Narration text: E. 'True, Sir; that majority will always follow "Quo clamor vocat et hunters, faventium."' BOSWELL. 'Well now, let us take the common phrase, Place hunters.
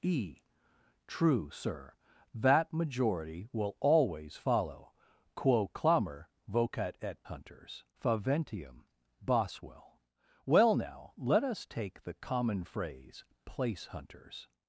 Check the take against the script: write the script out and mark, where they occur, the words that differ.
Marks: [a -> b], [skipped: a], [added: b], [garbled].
E. 'True, Sir; that majority will always follow "Quo clamor vocat et hunters, faventium."' BOSWELL. 'Well now, let us take the common phrase, Place hunters.